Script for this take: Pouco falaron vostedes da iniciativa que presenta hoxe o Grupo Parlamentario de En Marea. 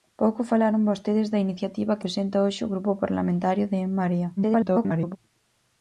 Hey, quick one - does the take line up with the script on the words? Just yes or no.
no